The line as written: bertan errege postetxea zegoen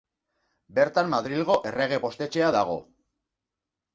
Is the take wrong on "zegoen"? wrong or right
wrong